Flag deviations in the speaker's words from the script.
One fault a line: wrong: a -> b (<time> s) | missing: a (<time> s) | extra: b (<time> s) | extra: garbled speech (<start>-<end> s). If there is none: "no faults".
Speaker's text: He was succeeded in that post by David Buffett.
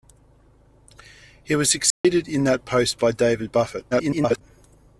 extra: garbled speech (3.9-4.4 s)